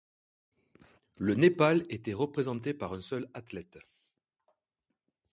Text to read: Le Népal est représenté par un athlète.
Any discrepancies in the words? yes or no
yes